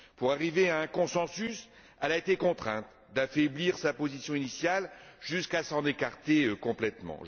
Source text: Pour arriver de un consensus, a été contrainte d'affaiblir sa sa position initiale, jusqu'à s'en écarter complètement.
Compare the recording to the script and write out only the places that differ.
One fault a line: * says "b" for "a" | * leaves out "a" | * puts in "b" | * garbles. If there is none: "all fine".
* says "à" for "de"
* puts in "elle"
* leaves out "sa"